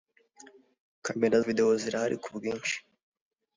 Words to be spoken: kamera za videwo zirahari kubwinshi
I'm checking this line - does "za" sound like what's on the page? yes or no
no